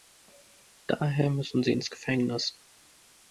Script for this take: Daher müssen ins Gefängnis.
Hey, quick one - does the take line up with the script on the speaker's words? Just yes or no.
no